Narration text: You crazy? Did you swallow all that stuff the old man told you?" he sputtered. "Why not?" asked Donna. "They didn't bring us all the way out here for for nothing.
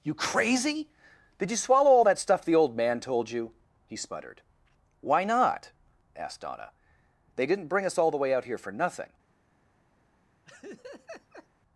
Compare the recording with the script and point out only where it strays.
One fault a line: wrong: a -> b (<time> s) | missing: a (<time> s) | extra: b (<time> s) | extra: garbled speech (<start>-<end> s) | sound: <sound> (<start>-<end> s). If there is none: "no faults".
missing: for (8.7 s)
sound: laugh (10.5-11.5 s)